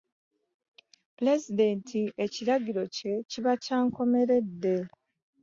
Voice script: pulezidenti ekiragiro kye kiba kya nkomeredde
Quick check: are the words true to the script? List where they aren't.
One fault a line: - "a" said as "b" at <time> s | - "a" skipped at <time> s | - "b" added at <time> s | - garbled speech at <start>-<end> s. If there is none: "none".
none